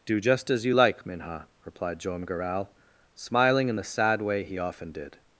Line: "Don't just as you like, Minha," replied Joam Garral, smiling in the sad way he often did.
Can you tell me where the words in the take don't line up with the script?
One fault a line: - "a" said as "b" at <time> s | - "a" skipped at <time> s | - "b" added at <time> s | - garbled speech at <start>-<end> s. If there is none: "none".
- "Don't" said as "Do" at 0.1 s